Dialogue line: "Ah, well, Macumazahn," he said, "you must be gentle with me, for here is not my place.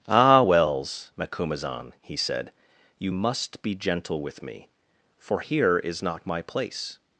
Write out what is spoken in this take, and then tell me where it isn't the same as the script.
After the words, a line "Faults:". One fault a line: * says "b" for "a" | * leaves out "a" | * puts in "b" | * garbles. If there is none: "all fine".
"Ah, wells, Macumazahn," he said, "you must be gentle with me, for here is not my place.
Faults:
* says "wells" for "well"